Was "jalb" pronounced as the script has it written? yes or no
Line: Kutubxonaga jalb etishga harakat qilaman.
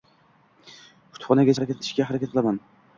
no